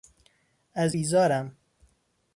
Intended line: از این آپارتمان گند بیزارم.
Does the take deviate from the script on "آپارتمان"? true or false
true